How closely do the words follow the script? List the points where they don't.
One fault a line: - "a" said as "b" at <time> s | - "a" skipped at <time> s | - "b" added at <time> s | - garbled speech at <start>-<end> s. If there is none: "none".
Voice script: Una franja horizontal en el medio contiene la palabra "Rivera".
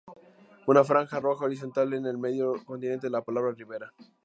- "roja" added at 1.2 s